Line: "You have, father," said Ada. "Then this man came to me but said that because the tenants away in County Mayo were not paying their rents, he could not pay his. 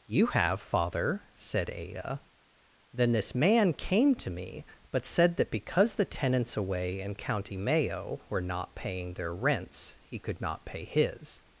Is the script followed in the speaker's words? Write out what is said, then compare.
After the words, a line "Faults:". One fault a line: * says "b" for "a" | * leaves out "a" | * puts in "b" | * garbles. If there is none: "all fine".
"You have, father," said Ada. "Then this man came to me but said that because the tenants away in County Mayo were not paying their rents, he could not pay his.
Faults:
all fine